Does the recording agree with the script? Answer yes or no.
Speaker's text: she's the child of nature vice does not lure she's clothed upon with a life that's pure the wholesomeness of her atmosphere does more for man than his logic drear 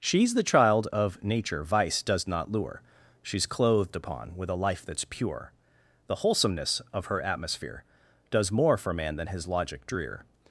yes